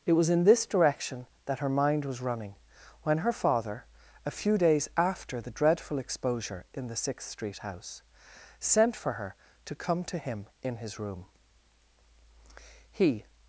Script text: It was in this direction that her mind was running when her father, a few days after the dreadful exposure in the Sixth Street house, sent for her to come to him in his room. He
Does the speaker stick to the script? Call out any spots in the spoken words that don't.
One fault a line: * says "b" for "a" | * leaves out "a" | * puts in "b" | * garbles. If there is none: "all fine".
all fine